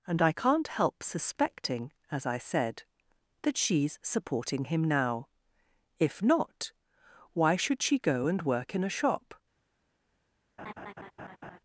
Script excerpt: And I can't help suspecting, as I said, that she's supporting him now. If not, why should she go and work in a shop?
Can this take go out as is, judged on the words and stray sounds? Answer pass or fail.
fail